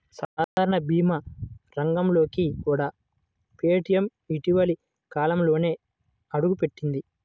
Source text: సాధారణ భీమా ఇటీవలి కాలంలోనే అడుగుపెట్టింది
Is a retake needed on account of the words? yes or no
yes